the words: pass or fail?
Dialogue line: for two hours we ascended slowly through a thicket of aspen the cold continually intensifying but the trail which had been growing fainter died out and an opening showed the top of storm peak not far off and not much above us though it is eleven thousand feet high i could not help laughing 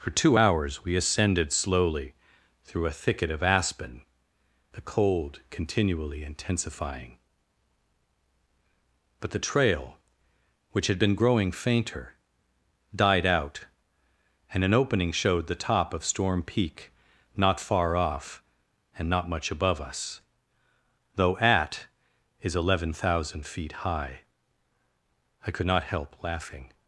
fail